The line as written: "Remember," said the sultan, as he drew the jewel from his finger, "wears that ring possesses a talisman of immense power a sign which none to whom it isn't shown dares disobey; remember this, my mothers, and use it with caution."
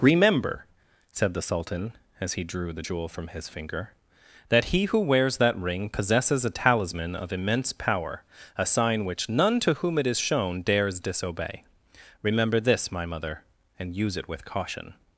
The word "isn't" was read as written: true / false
false